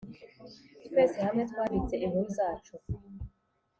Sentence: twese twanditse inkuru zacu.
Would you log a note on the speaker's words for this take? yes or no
yes